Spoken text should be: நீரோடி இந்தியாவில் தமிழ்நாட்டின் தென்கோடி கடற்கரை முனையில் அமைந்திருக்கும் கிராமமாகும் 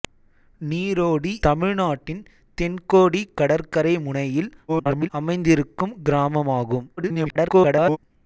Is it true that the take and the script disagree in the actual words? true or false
true